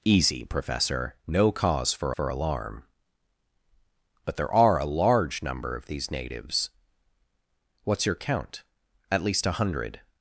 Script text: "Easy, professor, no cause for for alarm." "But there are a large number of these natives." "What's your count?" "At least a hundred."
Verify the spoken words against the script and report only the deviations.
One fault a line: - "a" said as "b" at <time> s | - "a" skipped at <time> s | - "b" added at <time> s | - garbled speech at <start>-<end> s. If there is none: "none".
none